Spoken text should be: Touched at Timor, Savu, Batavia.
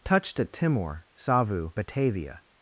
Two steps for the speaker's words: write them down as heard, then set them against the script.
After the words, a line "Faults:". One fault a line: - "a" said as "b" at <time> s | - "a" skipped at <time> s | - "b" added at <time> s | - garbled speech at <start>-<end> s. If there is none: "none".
Touched at Timor, Savu, Batavia.
Faults:
none